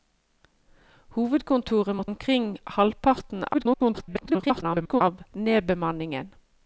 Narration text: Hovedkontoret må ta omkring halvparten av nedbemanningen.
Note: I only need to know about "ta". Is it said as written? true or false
false